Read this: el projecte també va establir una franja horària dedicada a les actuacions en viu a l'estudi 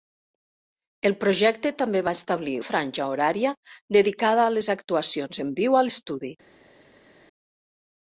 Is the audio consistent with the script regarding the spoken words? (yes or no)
no